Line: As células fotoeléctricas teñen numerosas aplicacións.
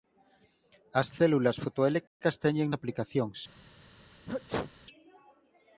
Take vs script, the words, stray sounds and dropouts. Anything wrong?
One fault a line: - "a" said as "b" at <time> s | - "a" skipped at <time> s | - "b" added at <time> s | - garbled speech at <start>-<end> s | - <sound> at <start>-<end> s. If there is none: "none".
- dropout at 2.1-2.2 s
- "numerosas" skipped at 2.7 s
- sneeze at 4.3-4.7 s